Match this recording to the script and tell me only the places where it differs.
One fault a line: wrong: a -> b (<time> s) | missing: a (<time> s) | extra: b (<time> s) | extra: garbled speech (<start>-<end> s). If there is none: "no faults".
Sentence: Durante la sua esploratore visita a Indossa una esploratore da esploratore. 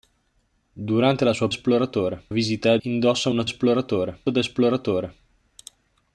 no faults